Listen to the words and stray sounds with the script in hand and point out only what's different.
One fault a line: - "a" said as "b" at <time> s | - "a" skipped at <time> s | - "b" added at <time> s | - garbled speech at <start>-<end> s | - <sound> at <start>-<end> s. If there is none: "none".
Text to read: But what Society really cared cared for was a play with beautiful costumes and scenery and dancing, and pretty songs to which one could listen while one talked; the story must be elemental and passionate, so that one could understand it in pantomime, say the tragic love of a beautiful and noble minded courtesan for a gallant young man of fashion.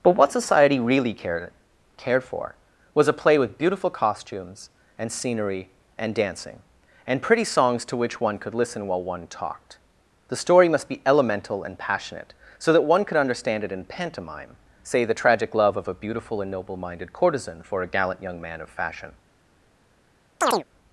- chirp at 20.4-20.6 s